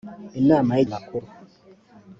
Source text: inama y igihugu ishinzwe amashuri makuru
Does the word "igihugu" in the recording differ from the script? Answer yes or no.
yes